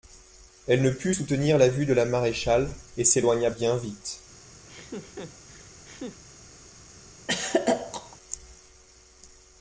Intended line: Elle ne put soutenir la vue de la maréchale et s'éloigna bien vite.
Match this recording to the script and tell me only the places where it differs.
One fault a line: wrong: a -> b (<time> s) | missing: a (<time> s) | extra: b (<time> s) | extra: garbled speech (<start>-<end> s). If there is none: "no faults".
no faults